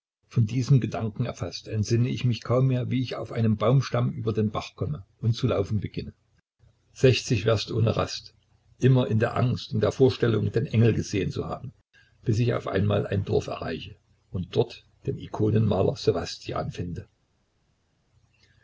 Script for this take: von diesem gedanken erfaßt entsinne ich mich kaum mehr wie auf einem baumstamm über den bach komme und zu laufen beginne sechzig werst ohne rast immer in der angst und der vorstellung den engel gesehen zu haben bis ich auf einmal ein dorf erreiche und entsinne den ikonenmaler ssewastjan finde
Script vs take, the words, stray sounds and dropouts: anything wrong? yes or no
yes